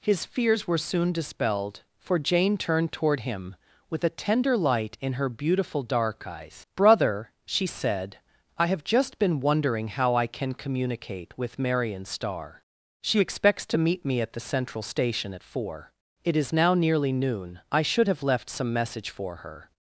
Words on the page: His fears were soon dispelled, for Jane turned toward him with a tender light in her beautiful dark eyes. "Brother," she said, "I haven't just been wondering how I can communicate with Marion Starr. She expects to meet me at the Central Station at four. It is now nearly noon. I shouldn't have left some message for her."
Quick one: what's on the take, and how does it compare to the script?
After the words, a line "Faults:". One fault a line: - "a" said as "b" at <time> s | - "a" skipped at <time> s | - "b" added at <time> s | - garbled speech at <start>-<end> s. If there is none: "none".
His fears were soon dispelled, for Jane turned toward him with a tender light in her beautiful dark eyes. "Brother," she said, "I have just been wondering how I can communicate with Marion Starr. She expects to meet me at the Central Station at four. It is now nearly noon. I should have left some message for her."
Faults:
- "haven't" said as "have" at 8.7 s
- "shouldn't" said as "should" at 17.8 s